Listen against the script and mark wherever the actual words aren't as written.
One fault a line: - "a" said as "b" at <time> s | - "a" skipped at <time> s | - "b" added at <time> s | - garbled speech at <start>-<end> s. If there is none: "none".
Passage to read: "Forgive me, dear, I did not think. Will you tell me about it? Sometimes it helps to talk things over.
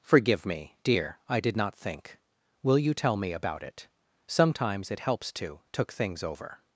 - "talk" said as "took" at 5.7 s